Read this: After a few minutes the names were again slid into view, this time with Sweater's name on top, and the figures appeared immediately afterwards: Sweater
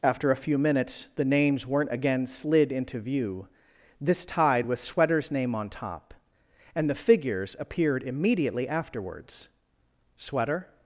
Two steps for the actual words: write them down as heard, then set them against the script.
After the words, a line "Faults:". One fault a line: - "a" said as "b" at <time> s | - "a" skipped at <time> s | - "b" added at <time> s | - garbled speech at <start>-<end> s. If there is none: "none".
After a few minutes the names weren't again slid into view, this tide with Sweater's name on top, and the figures appeared immediately afterwards: Sweater
Faults:
- "were" said as "weren't" at 1.7 s
- "time" said as "tide" at 4.2 s